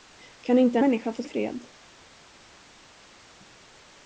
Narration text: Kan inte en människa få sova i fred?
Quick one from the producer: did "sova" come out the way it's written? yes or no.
no